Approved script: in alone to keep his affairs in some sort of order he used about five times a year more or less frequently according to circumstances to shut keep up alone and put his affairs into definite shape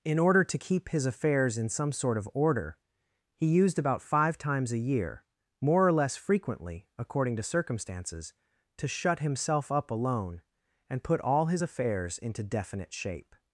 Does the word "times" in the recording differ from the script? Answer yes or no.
no